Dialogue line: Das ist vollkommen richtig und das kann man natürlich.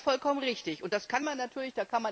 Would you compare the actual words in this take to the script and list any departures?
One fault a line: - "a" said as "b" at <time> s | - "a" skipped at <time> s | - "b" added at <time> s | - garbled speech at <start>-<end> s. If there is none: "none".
none